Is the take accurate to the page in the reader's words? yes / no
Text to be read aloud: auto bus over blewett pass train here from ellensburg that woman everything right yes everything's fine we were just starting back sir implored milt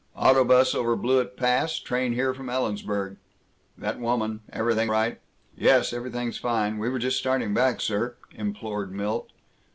yes